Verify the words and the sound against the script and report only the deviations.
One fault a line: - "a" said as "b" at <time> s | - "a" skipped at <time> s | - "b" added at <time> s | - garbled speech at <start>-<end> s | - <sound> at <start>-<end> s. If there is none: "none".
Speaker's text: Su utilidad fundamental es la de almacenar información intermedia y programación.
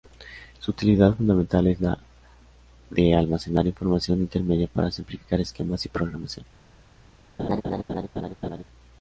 - "para simplificar esquemas" added at 4.7 s
- laugh at 7.4-8.6 s